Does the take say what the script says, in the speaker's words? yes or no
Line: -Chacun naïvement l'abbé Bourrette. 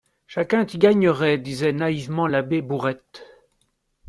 no